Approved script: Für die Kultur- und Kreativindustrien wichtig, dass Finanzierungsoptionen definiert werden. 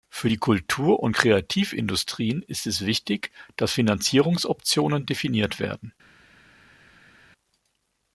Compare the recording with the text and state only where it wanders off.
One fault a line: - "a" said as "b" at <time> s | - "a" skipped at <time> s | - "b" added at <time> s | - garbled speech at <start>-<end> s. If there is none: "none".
- "ist es" added at 2.5 s